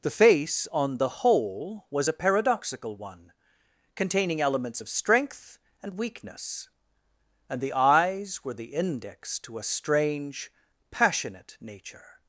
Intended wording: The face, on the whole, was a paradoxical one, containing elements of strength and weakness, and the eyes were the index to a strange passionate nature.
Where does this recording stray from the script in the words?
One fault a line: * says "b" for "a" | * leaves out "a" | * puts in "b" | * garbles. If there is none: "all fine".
all fine